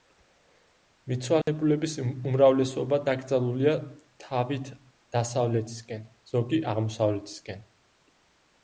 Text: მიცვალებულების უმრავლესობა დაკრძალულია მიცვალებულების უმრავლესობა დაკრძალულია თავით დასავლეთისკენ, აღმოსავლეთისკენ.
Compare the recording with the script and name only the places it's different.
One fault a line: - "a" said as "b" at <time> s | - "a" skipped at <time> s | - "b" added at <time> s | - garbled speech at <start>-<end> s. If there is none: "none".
- "მიცვალებულების უმრავლესობა დაკრძალულია" skipped at 3.7 s
- "ზოგი" added at 6.4 s